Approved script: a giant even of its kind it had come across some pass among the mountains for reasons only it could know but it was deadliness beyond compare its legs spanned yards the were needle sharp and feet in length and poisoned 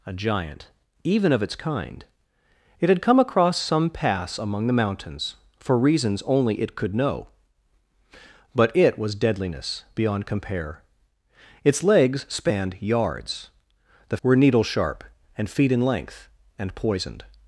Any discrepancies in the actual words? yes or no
no